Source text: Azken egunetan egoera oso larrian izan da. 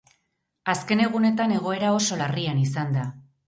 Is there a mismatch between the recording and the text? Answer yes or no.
no